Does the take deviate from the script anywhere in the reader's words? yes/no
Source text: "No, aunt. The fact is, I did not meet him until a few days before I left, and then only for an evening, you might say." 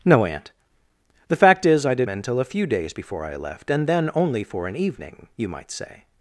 yes